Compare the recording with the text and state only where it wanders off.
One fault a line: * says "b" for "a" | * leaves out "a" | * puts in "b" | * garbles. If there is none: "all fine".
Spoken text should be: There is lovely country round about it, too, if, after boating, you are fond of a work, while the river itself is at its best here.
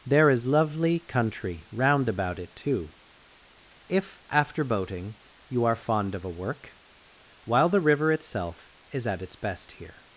all fine